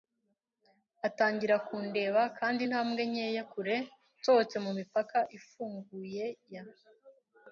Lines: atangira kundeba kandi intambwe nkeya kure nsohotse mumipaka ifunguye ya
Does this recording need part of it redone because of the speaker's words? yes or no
no